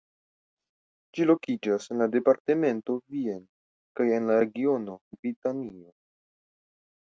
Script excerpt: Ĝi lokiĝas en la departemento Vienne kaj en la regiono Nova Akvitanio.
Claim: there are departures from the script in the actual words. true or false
true